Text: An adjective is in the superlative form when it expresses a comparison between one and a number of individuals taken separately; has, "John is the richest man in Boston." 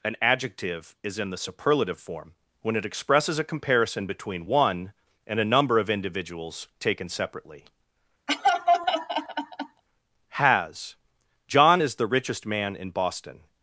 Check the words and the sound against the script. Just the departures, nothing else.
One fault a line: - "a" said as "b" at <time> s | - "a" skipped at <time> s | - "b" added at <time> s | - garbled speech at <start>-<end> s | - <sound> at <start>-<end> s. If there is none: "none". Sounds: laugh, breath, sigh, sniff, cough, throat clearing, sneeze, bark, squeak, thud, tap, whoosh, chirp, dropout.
- laugh at 8.3-9.8 s